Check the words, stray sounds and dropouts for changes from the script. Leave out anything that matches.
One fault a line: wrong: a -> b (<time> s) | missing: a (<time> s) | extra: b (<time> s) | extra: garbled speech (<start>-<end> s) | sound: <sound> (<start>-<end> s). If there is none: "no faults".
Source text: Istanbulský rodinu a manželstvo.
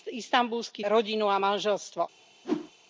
sound: whoosh (2.4-2.7 s)